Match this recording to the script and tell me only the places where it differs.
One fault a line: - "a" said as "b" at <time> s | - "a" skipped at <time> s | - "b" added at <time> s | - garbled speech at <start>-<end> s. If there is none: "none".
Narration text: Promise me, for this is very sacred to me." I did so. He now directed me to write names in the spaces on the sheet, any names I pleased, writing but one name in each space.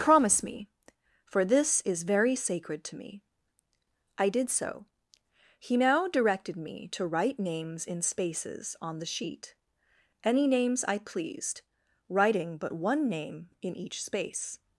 - "the" skipped at 8.0 s